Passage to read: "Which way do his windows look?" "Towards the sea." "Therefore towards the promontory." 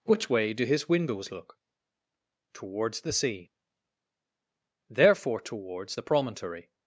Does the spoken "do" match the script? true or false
true